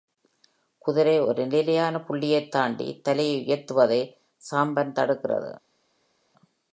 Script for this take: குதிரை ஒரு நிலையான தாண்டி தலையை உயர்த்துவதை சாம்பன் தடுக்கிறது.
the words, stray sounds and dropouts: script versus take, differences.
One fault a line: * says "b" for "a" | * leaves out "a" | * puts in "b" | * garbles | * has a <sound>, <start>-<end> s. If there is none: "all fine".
* puts in "புள்ளியைத்"